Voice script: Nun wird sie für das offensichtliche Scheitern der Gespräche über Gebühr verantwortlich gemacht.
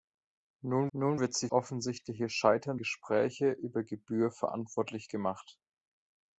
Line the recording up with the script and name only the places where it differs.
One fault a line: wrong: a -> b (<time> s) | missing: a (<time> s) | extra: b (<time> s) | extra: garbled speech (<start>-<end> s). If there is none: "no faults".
extra: nun (0.9 s)
missing: für das (1.5 s)
missing: der (2.8 s)